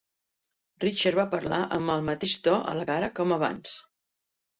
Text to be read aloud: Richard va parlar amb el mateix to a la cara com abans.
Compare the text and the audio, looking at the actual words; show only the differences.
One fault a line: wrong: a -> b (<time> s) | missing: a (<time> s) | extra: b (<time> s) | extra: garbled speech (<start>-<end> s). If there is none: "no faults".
no faults